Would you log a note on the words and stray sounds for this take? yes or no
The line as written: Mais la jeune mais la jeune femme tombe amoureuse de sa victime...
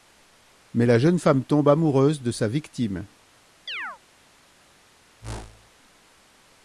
yes